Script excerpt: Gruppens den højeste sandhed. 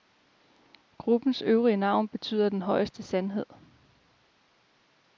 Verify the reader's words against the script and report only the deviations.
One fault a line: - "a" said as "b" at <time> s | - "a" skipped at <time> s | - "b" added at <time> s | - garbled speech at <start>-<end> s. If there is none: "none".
- "øvrige navn betyder" added at 1.4 s